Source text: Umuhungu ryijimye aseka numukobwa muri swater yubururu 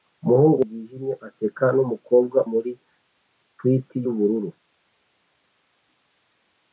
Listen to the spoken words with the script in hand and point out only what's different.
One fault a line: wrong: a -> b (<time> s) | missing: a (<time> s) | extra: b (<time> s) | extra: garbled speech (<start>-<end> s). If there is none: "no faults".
no faults